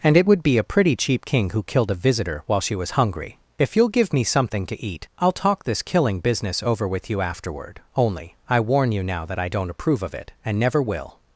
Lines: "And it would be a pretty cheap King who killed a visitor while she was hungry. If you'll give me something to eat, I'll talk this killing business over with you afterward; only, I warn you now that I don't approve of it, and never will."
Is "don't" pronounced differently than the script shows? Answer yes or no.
no